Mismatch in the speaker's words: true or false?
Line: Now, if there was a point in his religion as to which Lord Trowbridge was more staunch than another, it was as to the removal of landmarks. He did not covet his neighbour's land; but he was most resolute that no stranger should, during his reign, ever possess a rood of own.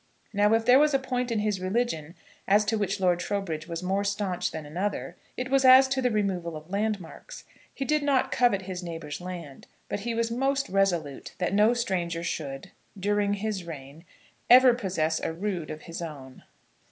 true